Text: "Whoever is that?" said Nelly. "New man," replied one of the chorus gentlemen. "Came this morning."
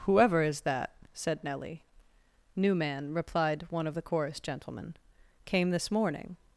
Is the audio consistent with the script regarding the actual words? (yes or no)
yes